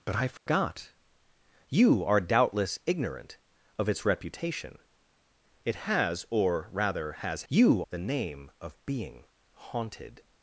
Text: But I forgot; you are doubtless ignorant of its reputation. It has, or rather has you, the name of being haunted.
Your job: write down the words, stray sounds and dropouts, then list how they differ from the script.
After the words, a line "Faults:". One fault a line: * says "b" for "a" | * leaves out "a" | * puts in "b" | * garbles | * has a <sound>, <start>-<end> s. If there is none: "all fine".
But I forgot; you are doubtless ignorant of its reputation. It has, or rather has you, the name of being haunted.
Faults:
* has a dropout, 0.4-0.5 s